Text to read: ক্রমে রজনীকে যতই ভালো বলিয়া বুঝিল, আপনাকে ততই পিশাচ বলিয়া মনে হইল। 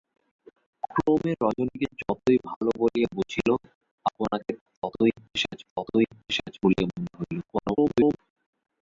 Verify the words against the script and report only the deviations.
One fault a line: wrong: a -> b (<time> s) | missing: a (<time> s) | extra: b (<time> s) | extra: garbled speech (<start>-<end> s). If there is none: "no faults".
extra: ততই পিশাচ (5.7 s)
extra: garbled speech (7.4-8.2 s)